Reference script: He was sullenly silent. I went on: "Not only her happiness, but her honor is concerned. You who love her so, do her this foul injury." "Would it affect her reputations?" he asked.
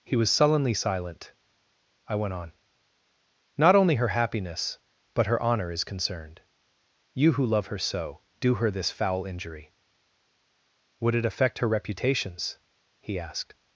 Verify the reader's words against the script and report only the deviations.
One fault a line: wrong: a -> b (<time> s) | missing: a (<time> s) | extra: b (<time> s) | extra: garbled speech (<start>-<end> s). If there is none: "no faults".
no faults